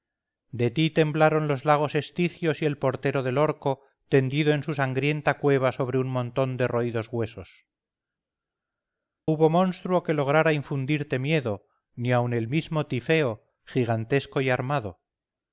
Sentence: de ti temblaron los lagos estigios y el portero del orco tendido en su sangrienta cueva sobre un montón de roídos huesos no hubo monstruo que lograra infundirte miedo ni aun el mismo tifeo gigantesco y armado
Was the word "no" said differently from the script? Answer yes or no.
yes